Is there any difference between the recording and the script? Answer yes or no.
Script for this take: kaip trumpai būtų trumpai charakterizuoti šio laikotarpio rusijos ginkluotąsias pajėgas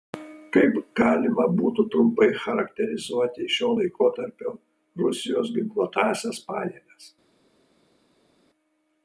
yes